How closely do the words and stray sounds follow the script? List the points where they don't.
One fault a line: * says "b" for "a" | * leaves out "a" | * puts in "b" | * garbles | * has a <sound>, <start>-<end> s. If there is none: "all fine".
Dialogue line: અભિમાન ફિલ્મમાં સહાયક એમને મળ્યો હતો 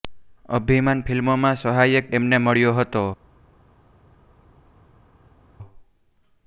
all fine